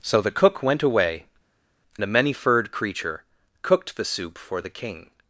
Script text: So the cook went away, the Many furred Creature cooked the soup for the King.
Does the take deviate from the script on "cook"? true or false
false